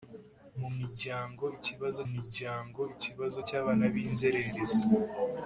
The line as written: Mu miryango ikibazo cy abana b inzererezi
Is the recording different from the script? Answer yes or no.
yes